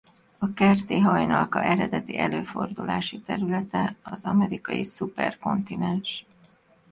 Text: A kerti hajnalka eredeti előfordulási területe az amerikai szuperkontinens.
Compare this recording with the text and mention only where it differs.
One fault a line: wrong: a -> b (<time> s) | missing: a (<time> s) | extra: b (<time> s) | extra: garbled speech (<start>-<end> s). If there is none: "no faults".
no faults